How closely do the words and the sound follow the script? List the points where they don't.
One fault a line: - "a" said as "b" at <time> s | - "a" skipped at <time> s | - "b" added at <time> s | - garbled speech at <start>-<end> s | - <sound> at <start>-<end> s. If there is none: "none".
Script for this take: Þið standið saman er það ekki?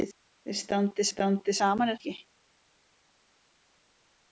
- "standið" added at 1.1 s
- "það" skipped at 2.0 s